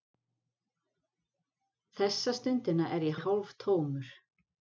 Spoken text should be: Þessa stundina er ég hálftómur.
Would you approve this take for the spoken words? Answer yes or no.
no